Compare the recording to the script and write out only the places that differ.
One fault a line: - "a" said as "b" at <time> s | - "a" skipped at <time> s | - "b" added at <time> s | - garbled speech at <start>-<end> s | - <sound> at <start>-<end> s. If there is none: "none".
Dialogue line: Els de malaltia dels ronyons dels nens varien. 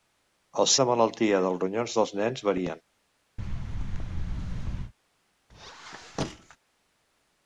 - thud at 3.4-4.9 s
- squeak at 5.5-6.6 s